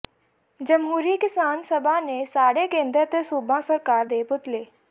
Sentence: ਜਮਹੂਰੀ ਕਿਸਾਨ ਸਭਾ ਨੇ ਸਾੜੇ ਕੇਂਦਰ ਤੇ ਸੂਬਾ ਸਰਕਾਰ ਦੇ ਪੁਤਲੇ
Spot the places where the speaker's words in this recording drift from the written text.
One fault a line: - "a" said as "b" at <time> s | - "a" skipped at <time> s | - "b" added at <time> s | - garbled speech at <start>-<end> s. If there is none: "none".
none